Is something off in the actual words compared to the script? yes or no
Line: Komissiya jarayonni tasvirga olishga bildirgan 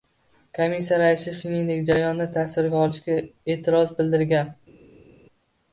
yes